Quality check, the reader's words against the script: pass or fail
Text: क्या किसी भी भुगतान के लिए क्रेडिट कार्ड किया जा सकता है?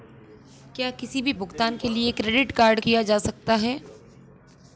pass